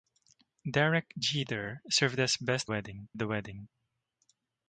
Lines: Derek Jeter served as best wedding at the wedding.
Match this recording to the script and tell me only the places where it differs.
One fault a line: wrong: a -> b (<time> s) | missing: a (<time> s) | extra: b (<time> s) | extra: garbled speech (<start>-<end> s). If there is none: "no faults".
no faults